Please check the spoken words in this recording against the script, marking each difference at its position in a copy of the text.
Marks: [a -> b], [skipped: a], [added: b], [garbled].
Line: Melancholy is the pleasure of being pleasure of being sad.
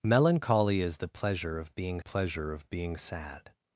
Melancholy is the pleasure of being pleasure of being sad.